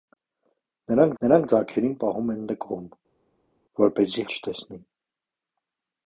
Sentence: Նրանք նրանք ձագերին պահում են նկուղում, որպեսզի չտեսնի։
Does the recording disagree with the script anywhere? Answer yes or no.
no